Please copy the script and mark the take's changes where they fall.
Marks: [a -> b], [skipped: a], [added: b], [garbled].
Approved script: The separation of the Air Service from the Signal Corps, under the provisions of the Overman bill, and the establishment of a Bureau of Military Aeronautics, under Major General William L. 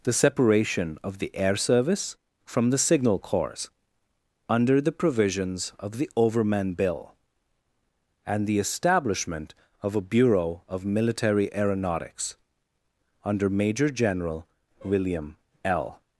The separation of the Air Service from the Signal Corps, under the provisions of the Overman bill, and the establishment of a Bureau of Military Aeronautics, under Major General William L.